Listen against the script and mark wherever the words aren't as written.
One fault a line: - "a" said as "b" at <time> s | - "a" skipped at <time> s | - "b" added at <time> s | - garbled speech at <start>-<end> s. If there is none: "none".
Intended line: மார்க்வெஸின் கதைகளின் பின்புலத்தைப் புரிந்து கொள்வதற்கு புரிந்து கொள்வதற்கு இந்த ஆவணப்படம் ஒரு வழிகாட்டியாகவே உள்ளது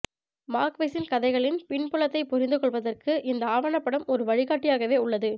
- "புரிந்து கொள்வதற்கு" skipped at 3.1 s